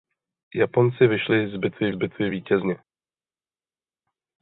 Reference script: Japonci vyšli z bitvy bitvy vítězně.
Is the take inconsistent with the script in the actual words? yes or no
no